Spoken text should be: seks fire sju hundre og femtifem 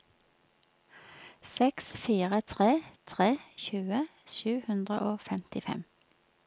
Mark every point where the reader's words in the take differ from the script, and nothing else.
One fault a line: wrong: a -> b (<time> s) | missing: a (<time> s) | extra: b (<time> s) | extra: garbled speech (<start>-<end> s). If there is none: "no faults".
extra: tre tre tjue (2.5 s)